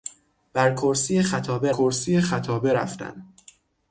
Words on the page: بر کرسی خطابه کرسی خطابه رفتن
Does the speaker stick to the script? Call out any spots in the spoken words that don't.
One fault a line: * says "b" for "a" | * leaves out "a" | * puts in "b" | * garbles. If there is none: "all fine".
all fine